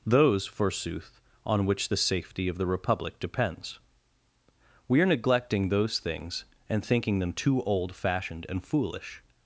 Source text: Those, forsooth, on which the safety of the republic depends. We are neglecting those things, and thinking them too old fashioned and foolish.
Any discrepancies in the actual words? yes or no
no